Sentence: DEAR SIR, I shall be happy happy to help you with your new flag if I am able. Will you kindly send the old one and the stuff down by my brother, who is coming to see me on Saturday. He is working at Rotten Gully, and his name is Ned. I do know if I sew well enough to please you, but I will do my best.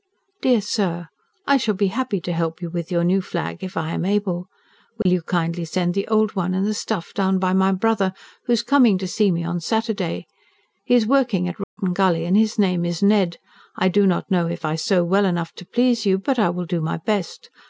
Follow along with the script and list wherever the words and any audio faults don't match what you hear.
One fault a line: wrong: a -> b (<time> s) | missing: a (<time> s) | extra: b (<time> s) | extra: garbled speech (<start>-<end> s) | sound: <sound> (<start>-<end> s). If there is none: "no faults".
missing: happy (2.2 s)
sound: dropout (5.0-5.1 s)
sound: dropout (11.6-11.8 s)
extra: not (14.1 s)